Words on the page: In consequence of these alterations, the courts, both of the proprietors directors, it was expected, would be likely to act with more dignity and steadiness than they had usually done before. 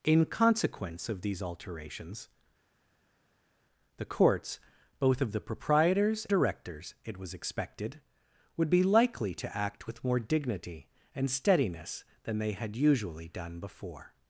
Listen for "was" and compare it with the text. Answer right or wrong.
right